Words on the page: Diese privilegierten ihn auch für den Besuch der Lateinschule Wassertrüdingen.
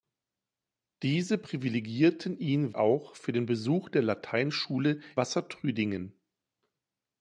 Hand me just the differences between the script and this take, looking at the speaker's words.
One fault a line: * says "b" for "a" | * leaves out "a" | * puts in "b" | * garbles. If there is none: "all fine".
all fine